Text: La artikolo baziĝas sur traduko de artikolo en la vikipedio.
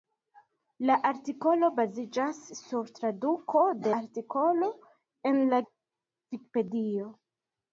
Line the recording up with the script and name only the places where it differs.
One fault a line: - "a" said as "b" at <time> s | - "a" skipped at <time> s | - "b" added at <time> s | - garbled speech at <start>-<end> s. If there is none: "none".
none